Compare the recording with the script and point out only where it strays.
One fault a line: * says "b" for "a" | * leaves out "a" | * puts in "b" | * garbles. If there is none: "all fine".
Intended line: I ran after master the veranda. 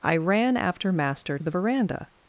all fine